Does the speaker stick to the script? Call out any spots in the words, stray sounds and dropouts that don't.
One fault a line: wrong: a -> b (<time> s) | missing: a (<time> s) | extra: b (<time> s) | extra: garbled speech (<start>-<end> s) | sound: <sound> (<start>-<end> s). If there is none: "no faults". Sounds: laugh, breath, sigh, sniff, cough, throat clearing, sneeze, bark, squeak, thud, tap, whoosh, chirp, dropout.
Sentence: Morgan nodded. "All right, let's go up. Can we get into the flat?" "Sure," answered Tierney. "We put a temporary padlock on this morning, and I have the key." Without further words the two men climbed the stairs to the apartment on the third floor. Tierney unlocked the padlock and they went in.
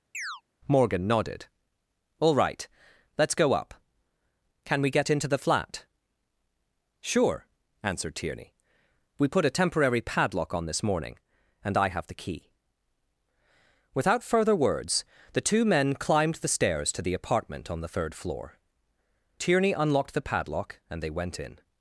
sound: chirp (0.1-0.4 s)